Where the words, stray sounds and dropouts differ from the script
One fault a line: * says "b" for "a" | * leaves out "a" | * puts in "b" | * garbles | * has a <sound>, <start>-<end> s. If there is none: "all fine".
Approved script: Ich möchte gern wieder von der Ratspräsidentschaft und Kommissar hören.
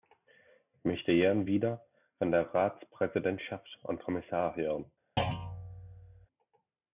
* has a thud, 5.2-6.3 s